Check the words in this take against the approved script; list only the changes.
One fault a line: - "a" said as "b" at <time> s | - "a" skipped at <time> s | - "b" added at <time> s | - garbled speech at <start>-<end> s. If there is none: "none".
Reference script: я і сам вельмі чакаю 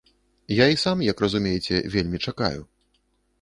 - "як разумееце" added at 1.1 s